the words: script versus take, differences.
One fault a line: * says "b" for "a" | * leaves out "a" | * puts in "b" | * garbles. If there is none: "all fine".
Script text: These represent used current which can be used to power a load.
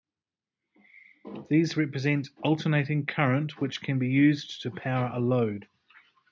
* says "alternating" for "used"